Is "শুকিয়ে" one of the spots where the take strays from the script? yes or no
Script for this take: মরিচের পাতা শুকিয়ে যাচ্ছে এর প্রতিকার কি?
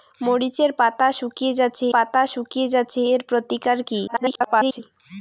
no